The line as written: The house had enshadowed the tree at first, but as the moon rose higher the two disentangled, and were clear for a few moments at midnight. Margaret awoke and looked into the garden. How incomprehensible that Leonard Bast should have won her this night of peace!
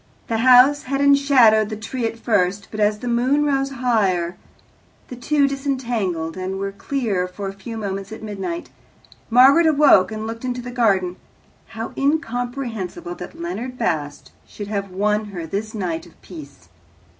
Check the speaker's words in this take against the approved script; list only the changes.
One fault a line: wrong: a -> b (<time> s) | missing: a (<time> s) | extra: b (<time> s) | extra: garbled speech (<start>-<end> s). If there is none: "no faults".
no faults